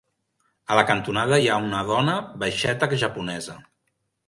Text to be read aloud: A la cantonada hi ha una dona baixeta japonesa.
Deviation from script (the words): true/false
false